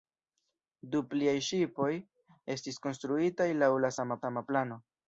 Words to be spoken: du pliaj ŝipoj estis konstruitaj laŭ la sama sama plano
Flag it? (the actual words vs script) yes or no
no